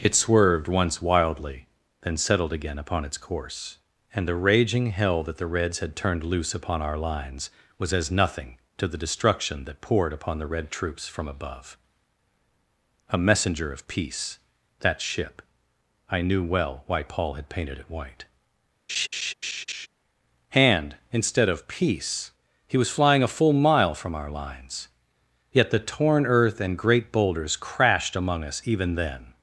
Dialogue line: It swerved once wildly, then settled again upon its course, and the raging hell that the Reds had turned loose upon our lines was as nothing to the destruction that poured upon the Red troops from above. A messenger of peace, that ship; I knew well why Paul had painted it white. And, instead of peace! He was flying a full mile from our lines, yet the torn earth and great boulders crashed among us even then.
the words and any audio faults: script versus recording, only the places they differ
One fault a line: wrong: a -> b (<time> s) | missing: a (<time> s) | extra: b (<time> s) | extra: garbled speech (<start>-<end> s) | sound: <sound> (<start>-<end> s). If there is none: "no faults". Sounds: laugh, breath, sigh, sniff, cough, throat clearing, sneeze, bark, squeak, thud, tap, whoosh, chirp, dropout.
sound: laugh (18.9-19.9 s)